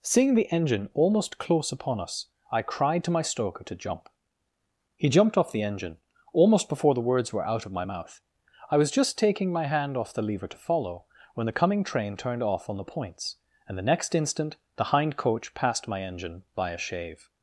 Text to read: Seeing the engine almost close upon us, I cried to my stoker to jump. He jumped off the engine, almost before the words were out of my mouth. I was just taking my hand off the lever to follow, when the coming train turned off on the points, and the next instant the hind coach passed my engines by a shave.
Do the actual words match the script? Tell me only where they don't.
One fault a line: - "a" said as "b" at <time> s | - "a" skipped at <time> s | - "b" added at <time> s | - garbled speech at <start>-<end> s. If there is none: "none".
- "engines" said as "engine" at 16.0 s